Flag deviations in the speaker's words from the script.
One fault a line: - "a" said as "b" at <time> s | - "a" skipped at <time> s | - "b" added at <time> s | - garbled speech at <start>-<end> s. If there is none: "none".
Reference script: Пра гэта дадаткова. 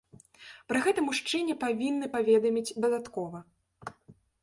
- "мужчыне павінны паведаміць" added at 1.1 s